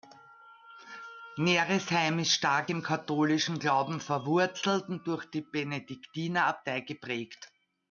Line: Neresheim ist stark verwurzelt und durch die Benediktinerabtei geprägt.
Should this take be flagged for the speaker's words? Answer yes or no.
yes